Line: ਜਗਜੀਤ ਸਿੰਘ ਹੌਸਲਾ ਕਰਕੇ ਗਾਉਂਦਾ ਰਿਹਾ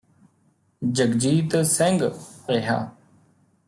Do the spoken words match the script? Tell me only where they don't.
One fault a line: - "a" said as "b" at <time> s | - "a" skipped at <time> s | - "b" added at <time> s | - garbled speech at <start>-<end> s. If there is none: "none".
- "ਹੌਸਲਾ ਕਰਕੇ ਗਾਉਂਦਾ" skipped at 2.1 s